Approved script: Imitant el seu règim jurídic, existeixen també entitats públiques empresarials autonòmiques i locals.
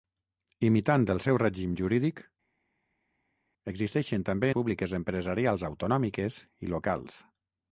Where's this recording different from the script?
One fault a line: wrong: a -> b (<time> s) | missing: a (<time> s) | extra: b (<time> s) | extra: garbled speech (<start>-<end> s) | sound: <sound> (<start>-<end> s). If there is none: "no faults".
missing: entitats (4.5 s)